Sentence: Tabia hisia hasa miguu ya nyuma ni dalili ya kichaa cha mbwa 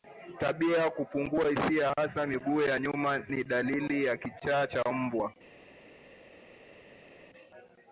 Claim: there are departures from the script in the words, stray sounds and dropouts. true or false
true